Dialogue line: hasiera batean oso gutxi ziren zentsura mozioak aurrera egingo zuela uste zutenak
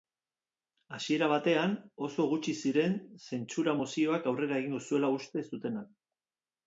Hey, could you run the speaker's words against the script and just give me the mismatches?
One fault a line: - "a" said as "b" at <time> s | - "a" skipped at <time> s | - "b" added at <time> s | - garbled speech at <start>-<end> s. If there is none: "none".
none